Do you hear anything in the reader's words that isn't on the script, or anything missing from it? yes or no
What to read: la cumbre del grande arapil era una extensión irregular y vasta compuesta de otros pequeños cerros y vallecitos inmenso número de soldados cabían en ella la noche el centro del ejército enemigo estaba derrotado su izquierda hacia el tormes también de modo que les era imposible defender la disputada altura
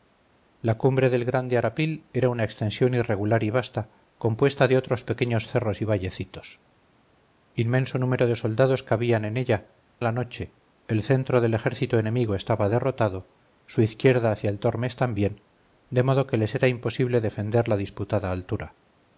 no